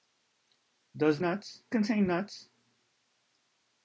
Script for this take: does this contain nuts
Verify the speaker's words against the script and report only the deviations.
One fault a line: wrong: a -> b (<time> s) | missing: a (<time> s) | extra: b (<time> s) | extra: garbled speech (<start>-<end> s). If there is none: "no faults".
wrong: this -> nuts (1.2 s)